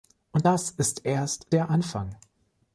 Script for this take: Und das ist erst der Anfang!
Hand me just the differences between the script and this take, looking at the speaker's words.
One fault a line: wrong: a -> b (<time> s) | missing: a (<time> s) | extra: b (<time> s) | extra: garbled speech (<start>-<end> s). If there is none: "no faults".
no faults